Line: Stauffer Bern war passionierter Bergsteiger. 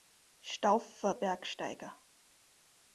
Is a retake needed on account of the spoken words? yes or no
yes